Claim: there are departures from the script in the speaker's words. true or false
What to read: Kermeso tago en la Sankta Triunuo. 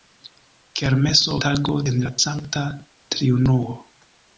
false